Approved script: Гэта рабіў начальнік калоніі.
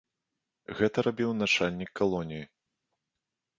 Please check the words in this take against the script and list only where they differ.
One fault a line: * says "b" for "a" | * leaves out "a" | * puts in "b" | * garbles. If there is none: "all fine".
all fine